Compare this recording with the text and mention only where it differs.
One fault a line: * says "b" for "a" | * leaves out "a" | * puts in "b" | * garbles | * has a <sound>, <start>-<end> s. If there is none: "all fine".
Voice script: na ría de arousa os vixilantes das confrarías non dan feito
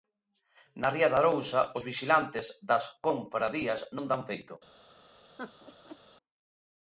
* has a laugh, 5.4-6.0 s